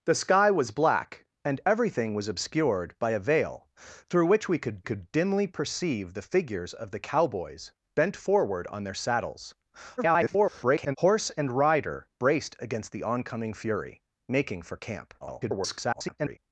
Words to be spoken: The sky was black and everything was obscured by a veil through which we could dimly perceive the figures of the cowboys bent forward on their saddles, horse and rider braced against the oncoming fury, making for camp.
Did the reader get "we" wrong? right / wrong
right